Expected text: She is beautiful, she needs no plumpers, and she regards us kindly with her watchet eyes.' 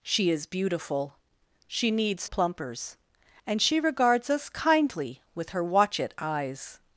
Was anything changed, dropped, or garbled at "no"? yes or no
yes